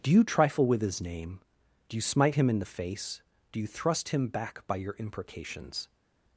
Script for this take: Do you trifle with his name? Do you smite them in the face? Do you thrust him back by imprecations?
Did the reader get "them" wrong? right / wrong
wrong